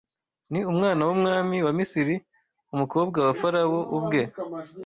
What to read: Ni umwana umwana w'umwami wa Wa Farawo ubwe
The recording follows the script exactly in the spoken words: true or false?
false